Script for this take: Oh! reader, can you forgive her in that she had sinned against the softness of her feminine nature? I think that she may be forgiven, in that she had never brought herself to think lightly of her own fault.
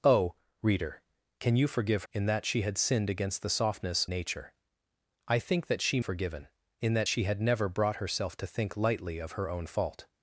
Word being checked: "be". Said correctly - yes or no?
no